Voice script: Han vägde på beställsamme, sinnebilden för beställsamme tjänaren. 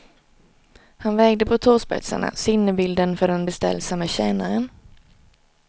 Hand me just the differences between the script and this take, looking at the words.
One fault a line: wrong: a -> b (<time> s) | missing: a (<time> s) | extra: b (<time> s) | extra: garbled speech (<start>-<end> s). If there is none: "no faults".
wrong: beställsamme -> tåspetsarna (1.6 s)
extra: den (3.3 s)